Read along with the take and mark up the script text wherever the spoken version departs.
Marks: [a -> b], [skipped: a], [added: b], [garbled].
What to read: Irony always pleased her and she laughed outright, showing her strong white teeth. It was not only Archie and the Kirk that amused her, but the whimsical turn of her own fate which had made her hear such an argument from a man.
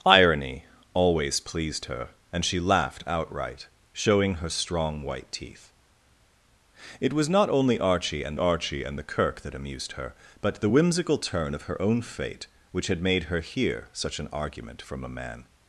Irony always pleased her and she laughed outright, showing her strong white teeth. It was not only Archie and [added: Archie and] the Kirk that amused her, but the whimsical turn of her own fate which had made her hear such an argument from a man.